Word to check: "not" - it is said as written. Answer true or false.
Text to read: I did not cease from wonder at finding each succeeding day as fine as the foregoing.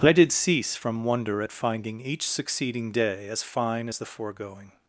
false